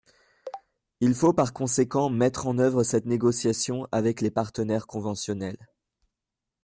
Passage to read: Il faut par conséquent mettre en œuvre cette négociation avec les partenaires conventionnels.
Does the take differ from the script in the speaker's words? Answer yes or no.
no